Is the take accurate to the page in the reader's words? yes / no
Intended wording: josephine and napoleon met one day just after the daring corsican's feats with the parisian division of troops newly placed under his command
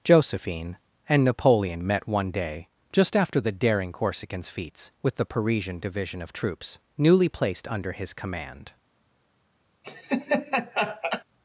yes